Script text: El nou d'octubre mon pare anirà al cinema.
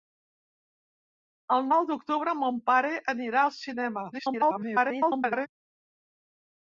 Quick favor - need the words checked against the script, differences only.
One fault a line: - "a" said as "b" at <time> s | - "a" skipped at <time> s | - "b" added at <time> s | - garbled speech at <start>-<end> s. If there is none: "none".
- garbled speech at 4.1-5.5 s